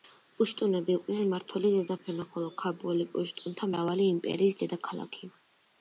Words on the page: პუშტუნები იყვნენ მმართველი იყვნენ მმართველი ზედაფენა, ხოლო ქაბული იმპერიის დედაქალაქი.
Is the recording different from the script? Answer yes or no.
yes